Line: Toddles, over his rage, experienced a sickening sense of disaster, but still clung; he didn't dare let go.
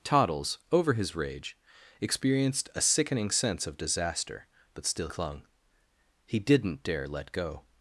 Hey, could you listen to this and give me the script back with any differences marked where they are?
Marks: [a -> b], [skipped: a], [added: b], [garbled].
Toddles, over his rage, experienced a sickening sense of disaster, but still clung; he didn't dare let go.